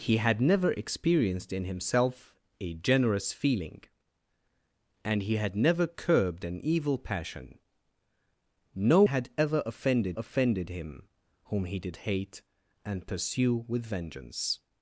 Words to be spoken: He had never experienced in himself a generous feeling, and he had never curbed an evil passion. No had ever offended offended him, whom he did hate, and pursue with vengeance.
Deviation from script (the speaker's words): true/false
false